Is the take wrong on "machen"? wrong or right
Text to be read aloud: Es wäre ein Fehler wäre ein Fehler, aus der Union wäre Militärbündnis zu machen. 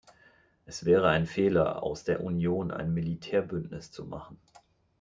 right